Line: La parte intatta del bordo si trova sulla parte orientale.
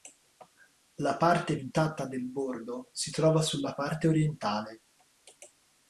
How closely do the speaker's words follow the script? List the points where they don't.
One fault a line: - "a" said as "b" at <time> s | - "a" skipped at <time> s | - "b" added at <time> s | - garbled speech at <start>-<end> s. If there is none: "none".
none